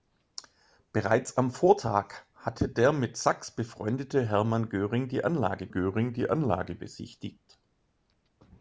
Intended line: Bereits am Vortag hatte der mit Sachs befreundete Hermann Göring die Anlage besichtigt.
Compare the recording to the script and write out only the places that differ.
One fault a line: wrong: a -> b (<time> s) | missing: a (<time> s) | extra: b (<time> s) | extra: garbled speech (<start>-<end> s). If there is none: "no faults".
extra: Göring die Anlage (5.7 s)